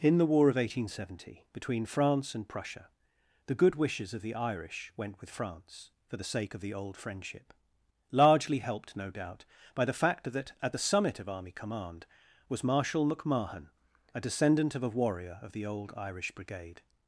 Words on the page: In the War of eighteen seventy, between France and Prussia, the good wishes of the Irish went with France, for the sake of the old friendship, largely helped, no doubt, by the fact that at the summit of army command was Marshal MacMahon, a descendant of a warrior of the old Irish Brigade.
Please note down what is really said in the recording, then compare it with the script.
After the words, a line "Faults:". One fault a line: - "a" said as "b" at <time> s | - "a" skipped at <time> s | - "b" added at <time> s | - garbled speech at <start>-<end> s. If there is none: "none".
In the War of eighteen seventy, between France and Prussia, the good wishes of the Irish went with France, for the sake of the old friendship, largely helped, no doubt, by the fact that at the summit of army command was Marshal MacMahon, a descendant of a warrior of the old Irish Brigade.
Faults:
none